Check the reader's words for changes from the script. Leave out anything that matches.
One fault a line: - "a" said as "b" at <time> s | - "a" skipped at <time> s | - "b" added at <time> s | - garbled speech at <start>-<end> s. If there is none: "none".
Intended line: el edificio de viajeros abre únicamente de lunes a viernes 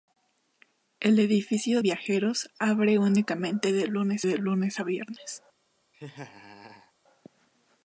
- "de" skipped at 1.8 s
- "de lunes" added at 4.2 s